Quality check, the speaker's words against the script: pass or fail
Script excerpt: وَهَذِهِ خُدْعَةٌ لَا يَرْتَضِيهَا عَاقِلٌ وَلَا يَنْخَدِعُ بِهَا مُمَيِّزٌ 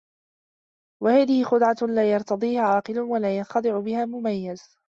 pass